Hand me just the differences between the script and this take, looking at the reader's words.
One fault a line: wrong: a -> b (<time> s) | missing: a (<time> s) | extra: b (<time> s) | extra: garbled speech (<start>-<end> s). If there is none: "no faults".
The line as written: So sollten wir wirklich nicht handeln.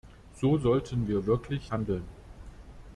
missing: nicht (1.7 s)